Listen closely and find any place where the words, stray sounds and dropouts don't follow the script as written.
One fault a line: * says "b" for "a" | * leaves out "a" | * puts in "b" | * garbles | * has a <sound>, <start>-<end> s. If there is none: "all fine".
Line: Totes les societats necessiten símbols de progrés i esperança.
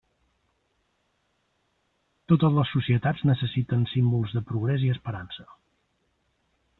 all fine